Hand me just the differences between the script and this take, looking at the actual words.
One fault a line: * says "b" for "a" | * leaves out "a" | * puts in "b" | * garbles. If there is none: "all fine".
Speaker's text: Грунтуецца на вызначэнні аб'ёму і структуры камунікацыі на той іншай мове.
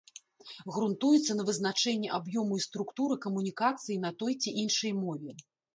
* puts in "ці"